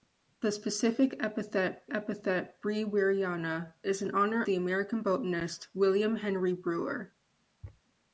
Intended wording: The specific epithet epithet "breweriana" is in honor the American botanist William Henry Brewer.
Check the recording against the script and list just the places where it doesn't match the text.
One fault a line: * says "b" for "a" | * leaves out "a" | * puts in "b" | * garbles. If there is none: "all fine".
all fine